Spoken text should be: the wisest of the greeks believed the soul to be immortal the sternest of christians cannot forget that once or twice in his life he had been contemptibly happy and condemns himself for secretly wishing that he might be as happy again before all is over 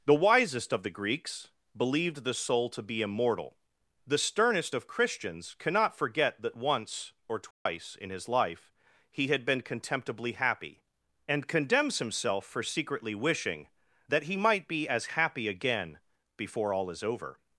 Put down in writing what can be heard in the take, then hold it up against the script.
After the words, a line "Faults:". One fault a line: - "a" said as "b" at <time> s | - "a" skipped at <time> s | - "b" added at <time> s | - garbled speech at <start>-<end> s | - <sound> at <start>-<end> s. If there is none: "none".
the wisest of the greeks believed the soul to be immortal the sternest of christians cannot forget that once or twice in his life he had been contemptibly happy and condemns himself for secretly wishing that he might be as happy again before all is over
Faults:
- dropout at 7.5-7.7 s